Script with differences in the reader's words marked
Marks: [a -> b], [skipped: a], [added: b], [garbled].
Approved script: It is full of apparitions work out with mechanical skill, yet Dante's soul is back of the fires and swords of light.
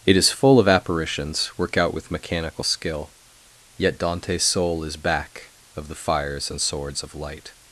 It is full of apparitions work out with mechanical skill, yet Dante's soul is back of the fires and swords of light.